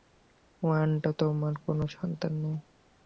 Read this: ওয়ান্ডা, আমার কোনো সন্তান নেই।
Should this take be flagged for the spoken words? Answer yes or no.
yes